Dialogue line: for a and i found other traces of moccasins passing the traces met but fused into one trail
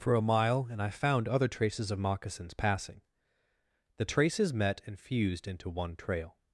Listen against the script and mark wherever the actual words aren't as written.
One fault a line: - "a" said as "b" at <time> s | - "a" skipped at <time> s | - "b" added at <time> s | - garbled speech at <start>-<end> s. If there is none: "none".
- "mile" added at 0.3 s
- "but" said as "and" at 4.9 s